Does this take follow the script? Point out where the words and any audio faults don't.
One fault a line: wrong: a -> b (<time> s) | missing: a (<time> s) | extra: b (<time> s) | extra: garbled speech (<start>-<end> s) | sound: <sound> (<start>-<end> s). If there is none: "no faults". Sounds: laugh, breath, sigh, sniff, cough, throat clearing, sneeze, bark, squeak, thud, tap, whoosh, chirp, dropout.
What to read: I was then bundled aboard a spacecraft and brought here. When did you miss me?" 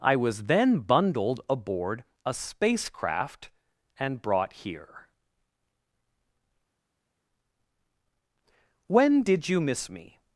no faults